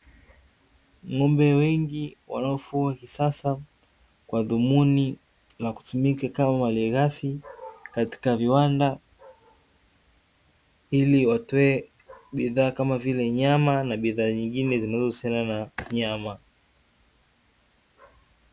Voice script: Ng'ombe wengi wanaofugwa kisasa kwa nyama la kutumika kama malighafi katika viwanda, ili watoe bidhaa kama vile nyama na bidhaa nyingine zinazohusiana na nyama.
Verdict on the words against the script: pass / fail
fail